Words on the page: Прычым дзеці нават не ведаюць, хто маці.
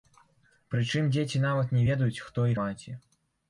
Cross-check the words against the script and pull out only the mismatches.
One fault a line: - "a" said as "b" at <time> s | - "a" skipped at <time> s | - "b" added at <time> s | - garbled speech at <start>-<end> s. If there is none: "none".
none